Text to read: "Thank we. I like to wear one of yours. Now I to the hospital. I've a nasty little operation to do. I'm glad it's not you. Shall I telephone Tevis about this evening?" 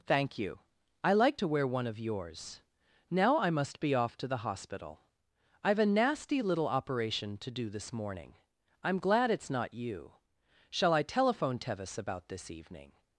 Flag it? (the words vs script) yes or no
yes